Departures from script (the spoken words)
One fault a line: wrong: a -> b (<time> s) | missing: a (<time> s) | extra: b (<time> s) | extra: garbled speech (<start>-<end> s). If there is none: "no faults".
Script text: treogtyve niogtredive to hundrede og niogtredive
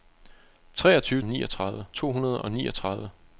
no faults